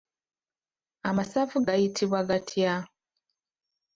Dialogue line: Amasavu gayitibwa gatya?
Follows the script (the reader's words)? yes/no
yes